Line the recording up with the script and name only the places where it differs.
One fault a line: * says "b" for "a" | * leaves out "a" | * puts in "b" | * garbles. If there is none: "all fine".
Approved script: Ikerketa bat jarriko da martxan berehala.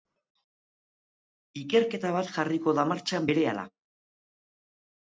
all fine